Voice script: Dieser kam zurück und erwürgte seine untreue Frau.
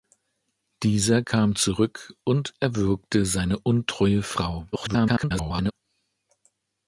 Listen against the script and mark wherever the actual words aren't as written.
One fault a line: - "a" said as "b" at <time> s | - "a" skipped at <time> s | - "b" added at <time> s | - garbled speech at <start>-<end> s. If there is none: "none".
- garbled speech at 4.7-5.7 s